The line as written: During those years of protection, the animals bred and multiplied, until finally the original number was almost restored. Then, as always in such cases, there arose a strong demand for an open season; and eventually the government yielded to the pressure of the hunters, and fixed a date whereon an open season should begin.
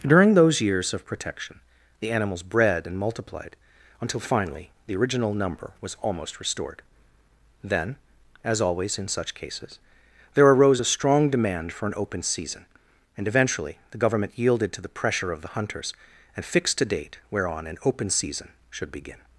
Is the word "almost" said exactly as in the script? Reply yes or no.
yes